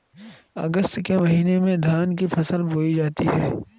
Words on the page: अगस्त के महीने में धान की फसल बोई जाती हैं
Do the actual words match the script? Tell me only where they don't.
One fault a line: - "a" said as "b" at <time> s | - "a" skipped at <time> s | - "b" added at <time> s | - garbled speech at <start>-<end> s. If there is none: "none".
none